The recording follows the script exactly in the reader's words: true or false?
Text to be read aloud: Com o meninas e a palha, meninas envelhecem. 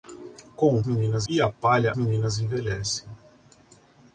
true